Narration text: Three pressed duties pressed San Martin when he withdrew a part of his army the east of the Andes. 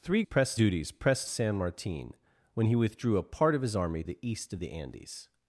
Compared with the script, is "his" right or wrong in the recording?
right